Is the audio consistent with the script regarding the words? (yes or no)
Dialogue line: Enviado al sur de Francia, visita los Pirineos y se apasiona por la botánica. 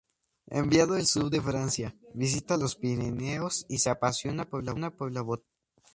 yes